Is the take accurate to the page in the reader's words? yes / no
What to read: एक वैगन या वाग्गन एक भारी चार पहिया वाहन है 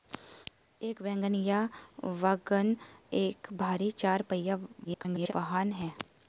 no